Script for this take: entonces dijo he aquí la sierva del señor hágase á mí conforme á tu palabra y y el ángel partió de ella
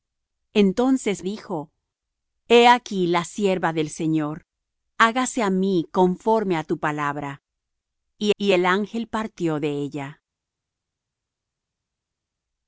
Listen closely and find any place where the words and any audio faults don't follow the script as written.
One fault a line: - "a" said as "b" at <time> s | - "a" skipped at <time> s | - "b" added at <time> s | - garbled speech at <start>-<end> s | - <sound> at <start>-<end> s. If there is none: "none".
none